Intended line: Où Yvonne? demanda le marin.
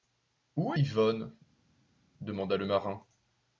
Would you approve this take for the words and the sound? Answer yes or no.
yes